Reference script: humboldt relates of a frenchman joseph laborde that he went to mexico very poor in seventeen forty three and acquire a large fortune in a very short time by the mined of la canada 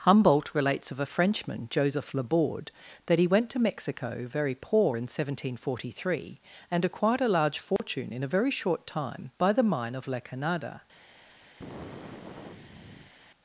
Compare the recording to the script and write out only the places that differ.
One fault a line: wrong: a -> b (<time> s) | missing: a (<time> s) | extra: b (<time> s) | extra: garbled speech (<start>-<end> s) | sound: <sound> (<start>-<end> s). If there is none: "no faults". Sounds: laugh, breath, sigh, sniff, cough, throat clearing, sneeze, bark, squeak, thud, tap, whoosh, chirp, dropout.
wrong: acquire -> acquired (6.8 s)
sound: dropout (7.8-7.8 s)
wrong: mined -> mine (9.6 s)
sound: sigh (11.6-13.1 s)